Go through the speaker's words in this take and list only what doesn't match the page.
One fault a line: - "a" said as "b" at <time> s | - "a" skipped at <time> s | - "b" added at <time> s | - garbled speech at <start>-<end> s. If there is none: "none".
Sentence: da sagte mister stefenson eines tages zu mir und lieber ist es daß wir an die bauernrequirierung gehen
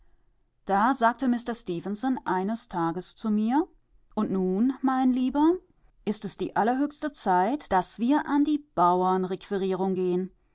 - "nun mein" added at 4.3 s
- "die allerhöchste zeit" added at 6.4 s